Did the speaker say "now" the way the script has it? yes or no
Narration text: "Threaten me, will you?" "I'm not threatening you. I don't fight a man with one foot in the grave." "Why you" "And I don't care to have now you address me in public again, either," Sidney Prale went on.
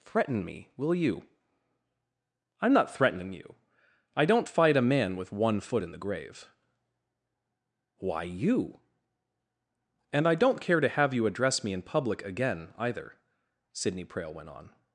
no